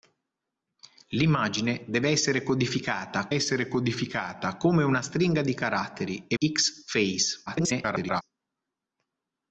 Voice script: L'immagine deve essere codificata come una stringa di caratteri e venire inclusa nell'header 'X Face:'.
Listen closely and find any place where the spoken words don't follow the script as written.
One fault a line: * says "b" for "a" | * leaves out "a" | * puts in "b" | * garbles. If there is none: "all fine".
* puts in "essere codificata"
* leaves out "venire inclusa nell'header"
* garbles